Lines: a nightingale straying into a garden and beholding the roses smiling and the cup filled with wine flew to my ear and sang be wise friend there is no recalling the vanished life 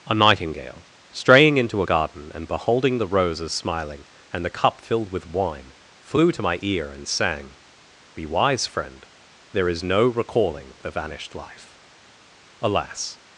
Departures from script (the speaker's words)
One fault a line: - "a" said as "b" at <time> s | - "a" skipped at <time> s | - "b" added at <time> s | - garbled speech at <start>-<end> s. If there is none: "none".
- "alas" added at 12.6 s